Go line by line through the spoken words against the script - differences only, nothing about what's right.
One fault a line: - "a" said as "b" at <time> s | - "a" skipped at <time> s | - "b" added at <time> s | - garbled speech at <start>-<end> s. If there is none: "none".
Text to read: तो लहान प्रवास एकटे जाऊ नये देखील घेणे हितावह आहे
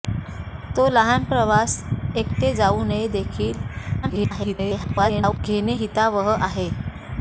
- garbled speech at 4.0-5.4 s